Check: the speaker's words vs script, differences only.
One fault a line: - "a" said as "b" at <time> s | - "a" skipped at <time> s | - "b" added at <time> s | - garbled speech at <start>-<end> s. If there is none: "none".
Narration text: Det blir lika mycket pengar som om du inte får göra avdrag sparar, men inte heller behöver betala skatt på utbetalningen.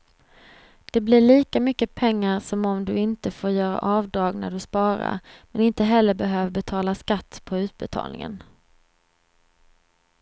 - "när du" added at 4.3 s